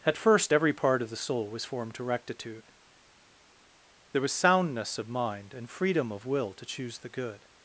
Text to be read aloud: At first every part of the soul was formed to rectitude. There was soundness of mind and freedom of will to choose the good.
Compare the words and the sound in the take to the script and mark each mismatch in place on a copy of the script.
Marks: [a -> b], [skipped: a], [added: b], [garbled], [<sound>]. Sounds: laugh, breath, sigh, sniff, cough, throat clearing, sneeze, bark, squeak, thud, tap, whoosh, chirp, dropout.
At first every part of the soul was formed to rectitude. There was soundness of mind and freedom of will to choose the good.